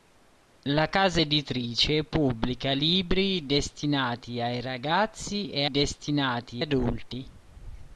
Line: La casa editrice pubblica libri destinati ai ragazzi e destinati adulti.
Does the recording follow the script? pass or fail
pass